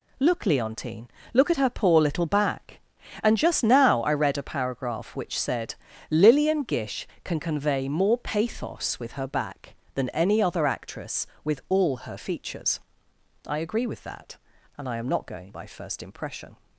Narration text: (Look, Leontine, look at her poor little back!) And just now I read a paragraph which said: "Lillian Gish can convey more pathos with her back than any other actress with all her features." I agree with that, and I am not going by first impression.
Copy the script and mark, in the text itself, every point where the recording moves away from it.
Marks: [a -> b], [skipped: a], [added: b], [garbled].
(Look, Leontine, look at her poor little back!) And just now I read a paragraph which said: "Lillian Gish can convey more pathos with her back than any other actress with all her features." I agree with that, and I am not going by first impression.